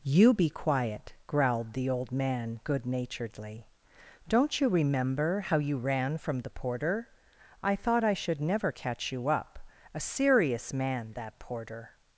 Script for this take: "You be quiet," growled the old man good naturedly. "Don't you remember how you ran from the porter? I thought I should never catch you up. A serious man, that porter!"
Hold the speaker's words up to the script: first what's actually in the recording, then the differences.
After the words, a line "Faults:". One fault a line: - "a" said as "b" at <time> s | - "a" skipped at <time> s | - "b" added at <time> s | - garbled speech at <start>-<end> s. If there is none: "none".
"You be quiet," growled the old man good naturedly. "Don't you remember how you ran from the porter? I thought I should never catch you up. A serious man, that porter!"
Faults:
none